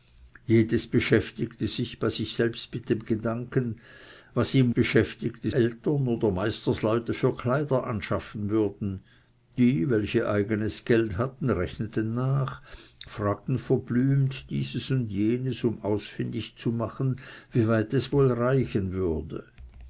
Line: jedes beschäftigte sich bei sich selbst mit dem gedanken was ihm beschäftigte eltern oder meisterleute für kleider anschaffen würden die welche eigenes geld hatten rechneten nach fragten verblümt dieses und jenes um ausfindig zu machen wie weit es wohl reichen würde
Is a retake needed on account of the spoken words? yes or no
no